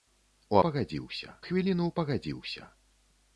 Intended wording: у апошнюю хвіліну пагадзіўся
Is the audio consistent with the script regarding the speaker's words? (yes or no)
no